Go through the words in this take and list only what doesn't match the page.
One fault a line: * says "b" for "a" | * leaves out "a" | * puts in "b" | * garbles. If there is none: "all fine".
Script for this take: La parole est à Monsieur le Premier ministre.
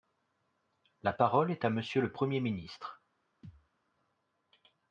all fine